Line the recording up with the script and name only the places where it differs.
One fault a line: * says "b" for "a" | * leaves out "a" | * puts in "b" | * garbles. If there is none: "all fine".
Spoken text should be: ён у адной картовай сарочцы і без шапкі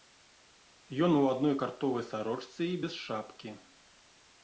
all fine